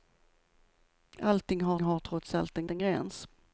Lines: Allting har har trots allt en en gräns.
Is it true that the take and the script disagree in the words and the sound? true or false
false